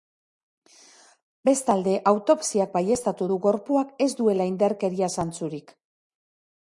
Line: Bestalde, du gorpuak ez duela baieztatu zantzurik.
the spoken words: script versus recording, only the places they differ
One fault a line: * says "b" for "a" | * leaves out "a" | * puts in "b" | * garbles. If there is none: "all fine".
* puts in "autopsiak baieztatu"
* says "indarkeria" for "baieztatu"